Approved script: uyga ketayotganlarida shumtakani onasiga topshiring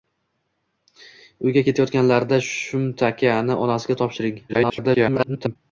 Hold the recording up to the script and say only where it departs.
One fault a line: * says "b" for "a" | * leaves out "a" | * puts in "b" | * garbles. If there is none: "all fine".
* garbles